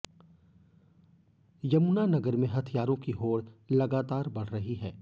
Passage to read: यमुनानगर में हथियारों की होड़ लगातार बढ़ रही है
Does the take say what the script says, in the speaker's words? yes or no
yes